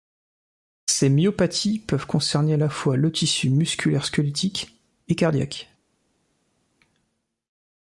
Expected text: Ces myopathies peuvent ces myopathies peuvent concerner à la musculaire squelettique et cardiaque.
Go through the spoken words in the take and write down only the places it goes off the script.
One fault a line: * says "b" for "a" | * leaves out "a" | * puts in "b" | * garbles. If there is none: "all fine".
* says "concerner à la fois le tissu" for "ces myopathies peuvent concerner à la"